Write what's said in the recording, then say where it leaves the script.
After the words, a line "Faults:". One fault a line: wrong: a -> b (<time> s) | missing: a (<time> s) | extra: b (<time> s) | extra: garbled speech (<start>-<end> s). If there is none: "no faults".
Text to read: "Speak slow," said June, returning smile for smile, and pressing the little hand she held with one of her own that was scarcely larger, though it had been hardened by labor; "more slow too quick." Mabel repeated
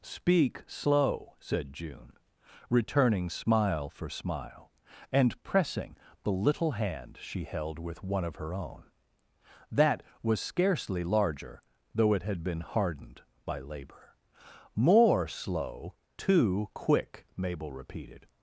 "Speak slow," said June, returning smile for smile, and pressing the little hand she held with one of her own that was scarcely larger, though it had been hardened by labor; "more slow too quick." Mabel repeated
Faults:
no faults